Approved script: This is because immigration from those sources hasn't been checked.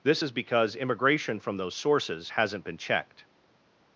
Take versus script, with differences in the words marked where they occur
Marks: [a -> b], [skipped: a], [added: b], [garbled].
This is because immigration from those sources hasn't been checked.